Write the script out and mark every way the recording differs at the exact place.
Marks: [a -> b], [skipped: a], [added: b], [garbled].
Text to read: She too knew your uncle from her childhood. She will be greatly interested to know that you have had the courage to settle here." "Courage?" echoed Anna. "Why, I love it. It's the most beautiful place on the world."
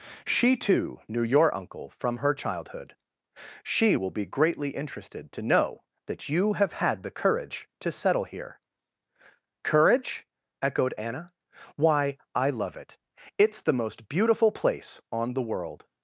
She too knew your uncle from her childhood. She will be greatly interested to know that you have had the courage to settle here." "Courage?" echoed Anna. "Why, I love it. It's the most beautiful place on the world."